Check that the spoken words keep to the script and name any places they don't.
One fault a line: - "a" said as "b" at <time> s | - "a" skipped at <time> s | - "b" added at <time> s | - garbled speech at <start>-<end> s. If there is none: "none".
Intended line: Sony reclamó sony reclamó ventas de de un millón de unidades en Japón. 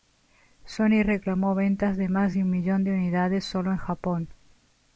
- "sony reclamó" skipped at 1.5 s
- "más" added at 2.1 s
- "solo" added at 3.4 s